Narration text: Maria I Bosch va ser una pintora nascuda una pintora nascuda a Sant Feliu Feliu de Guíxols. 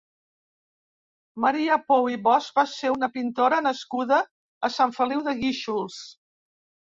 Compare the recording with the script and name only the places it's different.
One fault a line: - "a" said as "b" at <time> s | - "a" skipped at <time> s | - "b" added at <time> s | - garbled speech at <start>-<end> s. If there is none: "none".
- "Pou" added at 1.9 s
- "una pintora nascuda" skipped at 4.2 s
- "Feliu" skipped at 5.2 s